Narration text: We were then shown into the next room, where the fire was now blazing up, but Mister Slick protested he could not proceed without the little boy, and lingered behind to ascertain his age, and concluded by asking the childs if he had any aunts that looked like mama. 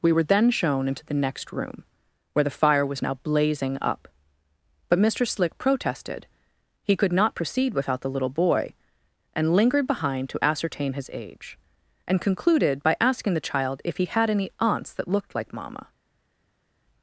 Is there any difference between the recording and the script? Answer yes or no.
yes